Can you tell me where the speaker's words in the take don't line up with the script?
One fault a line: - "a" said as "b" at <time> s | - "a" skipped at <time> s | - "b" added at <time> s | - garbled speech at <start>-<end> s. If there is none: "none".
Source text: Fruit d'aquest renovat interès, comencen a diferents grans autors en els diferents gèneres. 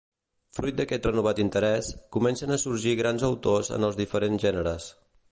- "diferents" said as "sorgir" at 2.6 s